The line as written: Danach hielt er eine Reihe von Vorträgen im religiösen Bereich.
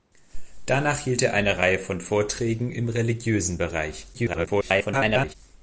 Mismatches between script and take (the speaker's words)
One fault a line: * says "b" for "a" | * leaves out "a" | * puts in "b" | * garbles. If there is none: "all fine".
* garbles